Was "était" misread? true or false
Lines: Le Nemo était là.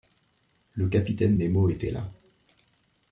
false